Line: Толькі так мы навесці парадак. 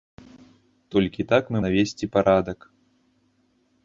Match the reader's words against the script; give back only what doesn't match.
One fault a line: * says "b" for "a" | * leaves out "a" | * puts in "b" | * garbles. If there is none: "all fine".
all fine